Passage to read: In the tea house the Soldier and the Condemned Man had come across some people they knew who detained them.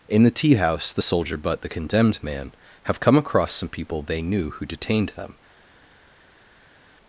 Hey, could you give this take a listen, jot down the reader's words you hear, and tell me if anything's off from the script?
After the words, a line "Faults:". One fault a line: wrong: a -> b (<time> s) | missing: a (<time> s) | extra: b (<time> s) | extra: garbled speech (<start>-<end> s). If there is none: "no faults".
In the tea house the Soldier but the Condemned Man have come across some people they knew who detained them.
Faults:
wrong: and -> but (1.4 s)
wrong: had -> have (2.8 s)